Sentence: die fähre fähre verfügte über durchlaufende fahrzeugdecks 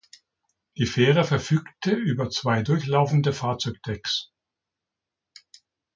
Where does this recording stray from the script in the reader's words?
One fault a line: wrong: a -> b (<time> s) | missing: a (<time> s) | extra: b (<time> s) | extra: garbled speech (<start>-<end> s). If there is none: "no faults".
missing: fähre (1.2 s)
extra: zwei (2.3 s)